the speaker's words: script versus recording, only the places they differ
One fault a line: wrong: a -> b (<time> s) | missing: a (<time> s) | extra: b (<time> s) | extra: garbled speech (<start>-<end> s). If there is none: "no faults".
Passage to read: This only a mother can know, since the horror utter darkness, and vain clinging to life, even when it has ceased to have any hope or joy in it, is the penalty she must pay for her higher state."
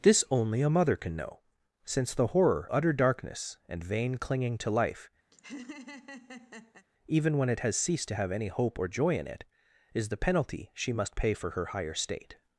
no faults